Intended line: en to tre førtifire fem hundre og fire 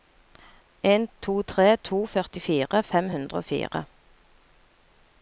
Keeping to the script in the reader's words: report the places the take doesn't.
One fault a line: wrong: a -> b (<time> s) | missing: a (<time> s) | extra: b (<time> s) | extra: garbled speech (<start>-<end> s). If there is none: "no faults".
extra: to (1.9 s)